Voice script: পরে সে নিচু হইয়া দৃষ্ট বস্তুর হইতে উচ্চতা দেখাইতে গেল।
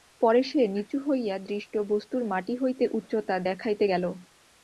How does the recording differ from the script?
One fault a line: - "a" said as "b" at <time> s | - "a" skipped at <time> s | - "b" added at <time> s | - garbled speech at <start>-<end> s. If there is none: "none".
- "মাটি" added at 2.2 s